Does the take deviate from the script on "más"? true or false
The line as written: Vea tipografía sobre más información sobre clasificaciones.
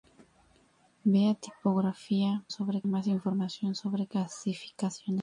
false